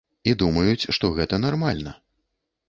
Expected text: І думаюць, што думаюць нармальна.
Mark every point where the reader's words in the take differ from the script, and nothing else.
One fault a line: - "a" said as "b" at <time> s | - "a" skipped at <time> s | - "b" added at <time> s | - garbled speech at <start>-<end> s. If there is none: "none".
- "думаюць" said as "гэта" at 1.2 s